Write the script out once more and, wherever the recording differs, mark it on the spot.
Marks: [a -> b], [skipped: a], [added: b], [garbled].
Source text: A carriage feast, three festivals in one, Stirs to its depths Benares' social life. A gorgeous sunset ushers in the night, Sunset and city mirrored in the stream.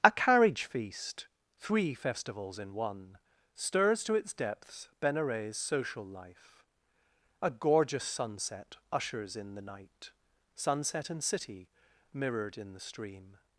A carriage feast, three festivals in one, Stirs to its depths Benares' social life. A gorgeous sunset ushers in the night, Sunset and city mirrored in the stream.